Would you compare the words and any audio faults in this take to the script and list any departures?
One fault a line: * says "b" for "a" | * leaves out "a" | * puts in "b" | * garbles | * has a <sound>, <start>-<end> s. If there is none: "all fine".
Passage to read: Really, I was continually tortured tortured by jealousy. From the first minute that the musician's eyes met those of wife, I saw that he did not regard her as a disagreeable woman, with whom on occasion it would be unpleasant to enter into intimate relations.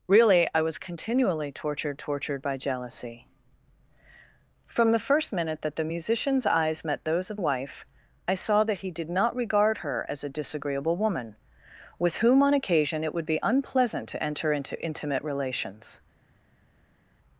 all fine